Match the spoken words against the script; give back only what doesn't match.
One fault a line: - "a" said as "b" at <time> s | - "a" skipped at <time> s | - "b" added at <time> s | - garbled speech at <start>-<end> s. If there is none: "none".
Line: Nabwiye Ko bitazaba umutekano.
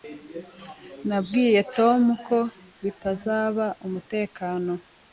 - "Tom" added at 1.8 s